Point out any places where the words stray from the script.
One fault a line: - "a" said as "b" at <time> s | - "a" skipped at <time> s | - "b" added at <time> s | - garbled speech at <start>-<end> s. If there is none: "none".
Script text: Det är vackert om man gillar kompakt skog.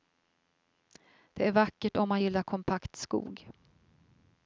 none